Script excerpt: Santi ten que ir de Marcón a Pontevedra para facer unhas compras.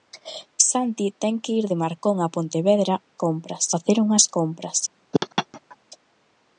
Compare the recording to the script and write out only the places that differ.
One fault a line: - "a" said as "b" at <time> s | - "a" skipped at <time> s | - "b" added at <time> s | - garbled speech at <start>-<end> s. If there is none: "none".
- "para" said as "compras" at 3.2 s